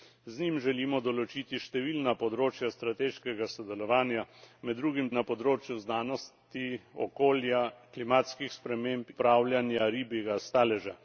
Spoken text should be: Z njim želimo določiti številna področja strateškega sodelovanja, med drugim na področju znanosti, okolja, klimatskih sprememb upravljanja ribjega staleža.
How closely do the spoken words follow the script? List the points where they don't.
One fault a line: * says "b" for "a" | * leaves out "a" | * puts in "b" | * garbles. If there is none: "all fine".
all fine